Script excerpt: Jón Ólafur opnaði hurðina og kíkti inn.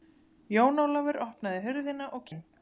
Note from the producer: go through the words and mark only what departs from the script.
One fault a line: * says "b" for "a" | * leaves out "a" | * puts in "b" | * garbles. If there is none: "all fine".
* leaves out "kíkti"